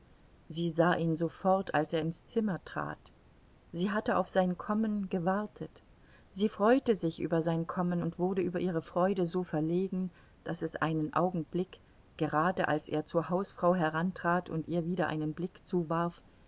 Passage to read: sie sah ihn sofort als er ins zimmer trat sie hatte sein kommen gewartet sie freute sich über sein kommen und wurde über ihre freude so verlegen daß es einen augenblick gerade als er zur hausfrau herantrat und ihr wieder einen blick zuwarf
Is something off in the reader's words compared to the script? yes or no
yes